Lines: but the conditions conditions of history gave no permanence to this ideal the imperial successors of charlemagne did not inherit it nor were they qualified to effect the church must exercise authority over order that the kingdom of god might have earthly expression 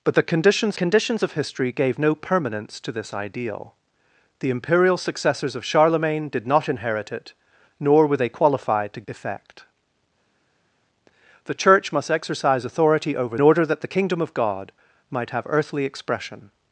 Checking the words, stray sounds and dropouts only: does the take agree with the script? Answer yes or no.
yes